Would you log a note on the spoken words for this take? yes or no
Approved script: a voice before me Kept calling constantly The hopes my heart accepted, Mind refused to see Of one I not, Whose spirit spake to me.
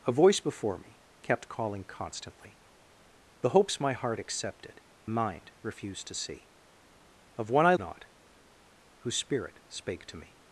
no